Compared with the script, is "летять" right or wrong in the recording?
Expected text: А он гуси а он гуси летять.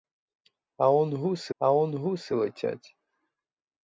right